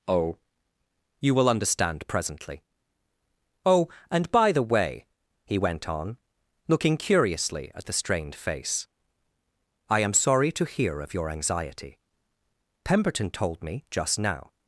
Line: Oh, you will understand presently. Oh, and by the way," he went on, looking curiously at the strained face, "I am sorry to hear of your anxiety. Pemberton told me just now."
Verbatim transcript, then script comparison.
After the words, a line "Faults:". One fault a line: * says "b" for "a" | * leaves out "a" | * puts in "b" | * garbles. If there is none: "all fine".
Oh, you will understand presently. Oh, and by the way," he went on, looking curiously at the strained face, "I am sorry to hear of your anxiety. Pemberton told me just now."
Faults:
all fine